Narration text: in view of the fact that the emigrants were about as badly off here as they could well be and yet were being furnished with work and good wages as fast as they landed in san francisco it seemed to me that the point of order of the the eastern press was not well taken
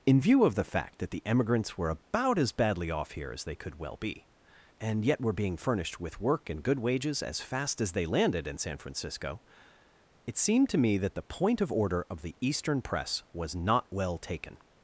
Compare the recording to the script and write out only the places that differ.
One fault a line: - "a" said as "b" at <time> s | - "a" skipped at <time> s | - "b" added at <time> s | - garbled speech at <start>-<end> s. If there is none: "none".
- "the" skipped at 12.3 s